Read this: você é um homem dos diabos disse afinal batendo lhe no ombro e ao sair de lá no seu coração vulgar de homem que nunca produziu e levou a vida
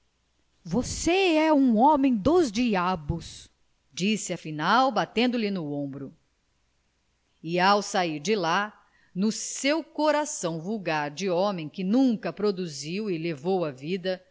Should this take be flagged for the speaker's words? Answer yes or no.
no